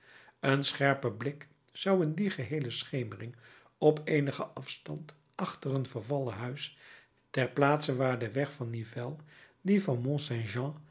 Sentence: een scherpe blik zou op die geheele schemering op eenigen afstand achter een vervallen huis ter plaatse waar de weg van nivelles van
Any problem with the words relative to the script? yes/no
yes